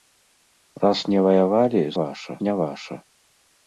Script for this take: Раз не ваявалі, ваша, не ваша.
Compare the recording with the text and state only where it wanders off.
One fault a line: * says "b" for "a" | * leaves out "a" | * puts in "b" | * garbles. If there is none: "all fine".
all fine